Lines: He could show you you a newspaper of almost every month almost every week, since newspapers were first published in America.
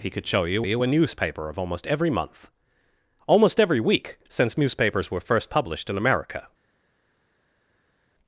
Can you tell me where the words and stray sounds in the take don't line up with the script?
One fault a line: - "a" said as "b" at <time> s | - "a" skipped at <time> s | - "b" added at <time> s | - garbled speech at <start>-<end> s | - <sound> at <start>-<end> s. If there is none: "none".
none